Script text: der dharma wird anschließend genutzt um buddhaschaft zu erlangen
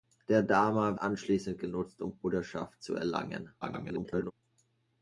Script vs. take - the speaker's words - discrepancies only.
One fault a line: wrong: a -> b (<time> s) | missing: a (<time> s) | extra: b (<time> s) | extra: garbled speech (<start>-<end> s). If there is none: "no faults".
missing: wird (1.0 s)
extra: garbled speech (3.6-4.3 s)